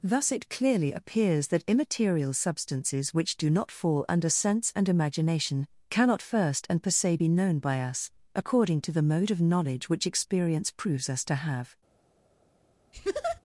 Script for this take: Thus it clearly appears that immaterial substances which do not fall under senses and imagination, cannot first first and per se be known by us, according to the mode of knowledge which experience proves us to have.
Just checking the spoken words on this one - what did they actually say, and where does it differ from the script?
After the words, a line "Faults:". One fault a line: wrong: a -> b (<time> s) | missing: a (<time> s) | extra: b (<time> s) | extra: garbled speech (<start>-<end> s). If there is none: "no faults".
Thus it clearly appears that immaterial substances which do not fall under sense and imagination, cannot first and per se be known by us, according to the mode of knowledge which experience proves us to have.
Faults:
wrong: senses -> sense (4.3 s)
missing: first (6.7 s)